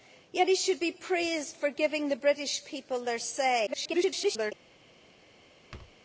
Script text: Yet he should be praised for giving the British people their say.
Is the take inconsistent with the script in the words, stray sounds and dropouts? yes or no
yes